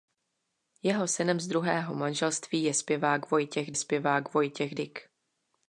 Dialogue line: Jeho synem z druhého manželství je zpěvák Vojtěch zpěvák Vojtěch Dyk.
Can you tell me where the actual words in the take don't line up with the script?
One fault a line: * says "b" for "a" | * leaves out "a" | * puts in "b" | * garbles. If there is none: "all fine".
all fine